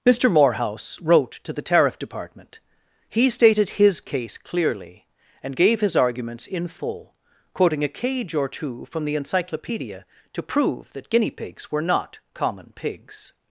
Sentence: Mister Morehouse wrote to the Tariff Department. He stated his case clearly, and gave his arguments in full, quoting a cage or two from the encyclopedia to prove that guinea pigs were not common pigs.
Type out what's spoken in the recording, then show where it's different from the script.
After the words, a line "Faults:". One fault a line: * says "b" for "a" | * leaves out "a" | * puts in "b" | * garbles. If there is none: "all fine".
Mister Morehouse wrote to the Tariff Department. He stated his case clearly, and gave his arguments in full, quoting a cage or two from the encyclopedia to prove that guinea pigs were not common pigs.
Faults:
all fine